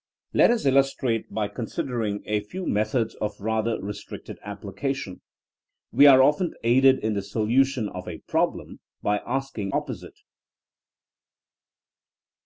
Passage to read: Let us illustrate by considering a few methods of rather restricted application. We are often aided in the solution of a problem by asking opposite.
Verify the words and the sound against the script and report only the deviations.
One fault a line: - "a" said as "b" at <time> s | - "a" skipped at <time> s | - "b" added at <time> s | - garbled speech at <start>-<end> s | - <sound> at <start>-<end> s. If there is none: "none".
none